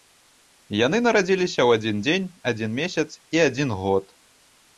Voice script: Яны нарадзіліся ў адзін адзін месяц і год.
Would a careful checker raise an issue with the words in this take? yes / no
yes